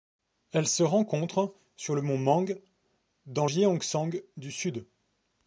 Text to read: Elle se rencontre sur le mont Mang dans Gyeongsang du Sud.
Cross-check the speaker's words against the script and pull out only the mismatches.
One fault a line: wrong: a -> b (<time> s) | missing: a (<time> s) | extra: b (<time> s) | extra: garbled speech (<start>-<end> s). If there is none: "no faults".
no faults